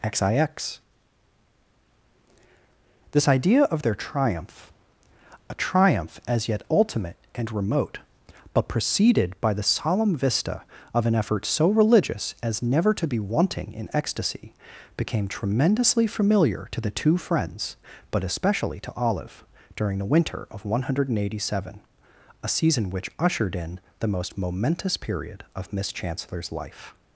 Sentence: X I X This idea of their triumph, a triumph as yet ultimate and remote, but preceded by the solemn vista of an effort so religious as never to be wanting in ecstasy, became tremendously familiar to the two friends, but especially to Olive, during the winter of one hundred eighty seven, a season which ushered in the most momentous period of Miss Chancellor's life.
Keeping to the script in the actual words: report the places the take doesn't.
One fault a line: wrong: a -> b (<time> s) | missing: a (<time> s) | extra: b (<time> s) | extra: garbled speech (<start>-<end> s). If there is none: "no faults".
no faults